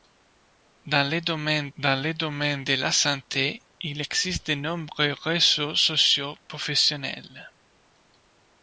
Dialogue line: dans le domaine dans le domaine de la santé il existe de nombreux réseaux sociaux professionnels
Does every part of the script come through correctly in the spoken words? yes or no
yes